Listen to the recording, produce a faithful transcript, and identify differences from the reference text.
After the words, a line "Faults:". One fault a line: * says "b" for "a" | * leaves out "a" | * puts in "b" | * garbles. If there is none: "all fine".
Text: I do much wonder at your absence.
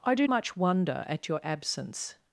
I do much wonder at your absence.
Faults:
all fine